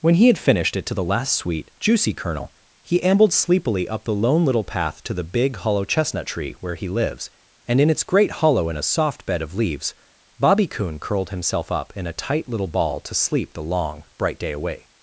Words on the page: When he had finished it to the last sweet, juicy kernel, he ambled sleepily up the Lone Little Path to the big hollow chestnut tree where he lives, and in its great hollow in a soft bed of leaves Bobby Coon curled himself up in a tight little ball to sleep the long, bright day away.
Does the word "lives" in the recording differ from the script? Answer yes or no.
no